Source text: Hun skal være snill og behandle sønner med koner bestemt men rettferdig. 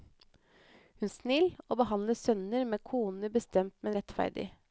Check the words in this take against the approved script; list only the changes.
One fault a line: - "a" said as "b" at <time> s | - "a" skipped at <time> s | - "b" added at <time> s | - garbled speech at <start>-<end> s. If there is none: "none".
- "skal være" skipped at 1.1 s